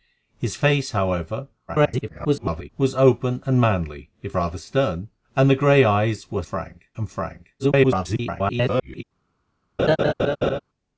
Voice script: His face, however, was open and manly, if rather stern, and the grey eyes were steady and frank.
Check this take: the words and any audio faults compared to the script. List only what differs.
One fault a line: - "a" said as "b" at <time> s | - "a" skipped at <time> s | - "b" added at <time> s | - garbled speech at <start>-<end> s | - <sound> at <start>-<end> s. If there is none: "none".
- garbled speech at 1.7-2.7 s
- "steady" said as "frank" at 6.5 s
- garbled speech at 7.6-9.0 s
- laugh at 9.8-10.6 s